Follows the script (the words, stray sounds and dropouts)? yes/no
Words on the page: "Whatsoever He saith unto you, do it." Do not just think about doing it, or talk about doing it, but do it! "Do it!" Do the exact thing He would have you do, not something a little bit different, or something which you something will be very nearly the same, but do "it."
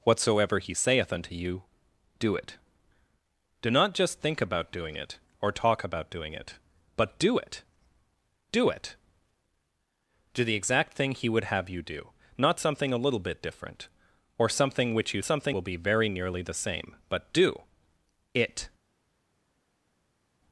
yes